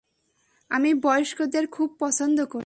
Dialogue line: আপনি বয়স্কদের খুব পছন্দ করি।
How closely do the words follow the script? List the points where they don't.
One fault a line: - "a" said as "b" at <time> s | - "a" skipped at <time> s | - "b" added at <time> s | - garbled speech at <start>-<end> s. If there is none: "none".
- "আপনি" said as "আমি" at 0.7 s